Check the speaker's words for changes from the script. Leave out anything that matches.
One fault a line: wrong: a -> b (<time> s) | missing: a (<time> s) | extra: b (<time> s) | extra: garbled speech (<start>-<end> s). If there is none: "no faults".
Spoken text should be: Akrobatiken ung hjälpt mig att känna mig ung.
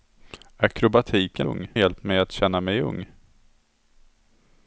no faults